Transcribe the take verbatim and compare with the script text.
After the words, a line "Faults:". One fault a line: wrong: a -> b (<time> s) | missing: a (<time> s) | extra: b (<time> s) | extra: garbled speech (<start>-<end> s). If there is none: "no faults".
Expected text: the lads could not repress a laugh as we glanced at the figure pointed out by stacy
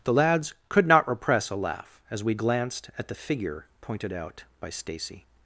the lads could not repress a laugh as we glanced at the figure pointed out by stacy
Faults:
no faults